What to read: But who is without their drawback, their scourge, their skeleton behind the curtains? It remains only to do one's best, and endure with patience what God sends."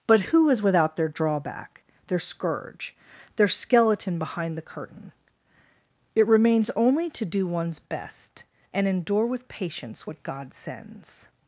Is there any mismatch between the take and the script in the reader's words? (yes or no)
yes